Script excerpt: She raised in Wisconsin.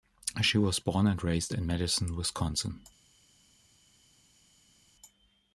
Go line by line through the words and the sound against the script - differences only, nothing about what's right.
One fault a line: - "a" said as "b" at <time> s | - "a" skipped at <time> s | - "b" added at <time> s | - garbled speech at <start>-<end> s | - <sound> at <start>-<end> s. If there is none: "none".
- "was born and" added at 0.6 s
- "Madison" added at 1.7 s